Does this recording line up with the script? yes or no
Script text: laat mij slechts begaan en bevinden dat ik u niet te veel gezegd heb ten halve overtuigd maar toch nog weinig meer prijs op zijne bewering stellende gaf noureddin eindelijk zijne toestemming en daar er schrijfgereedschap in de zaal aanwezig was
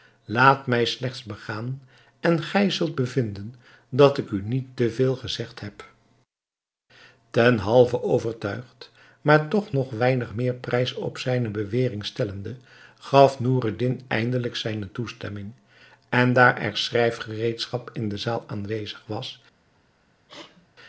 no